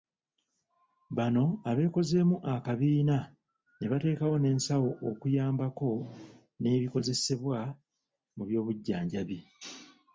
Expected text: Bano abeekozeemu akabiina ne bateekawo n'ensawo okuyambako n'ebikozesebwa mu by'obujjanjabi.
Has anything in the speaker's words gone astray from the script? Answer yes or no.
no